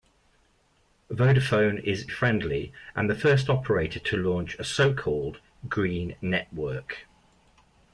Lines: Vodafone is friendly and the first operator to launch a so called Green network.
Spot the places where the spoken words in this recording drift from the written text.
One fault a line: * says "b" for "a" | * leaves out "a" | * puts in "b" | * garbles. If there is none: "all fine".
all fine